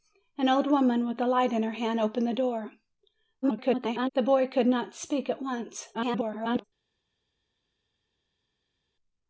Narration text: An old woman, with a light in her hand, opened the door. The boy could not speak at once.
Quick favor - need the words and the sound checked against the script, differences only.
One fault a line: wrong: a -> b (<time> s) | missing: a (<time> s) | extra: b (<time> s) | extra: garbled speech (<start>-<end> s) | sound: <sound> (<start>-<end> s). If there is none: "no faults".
extra: garbled speech (3.4-4.1 s)
extra: garbled speech (5.9-6.6 s)